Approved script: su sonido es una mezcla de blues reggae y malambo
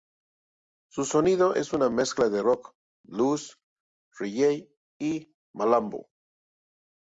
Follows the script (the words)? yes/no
no